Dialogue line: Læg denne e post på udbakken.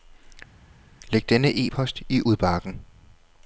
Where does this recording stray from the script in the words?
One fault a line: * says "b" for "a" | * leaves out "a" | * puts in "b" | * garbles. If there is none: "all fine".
* says "i" for "på"